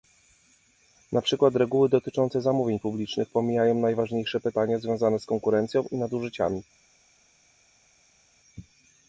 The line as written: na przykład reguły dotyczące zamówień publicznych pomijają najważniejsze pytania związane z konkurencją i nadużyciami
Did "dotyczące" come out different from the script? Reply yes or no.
no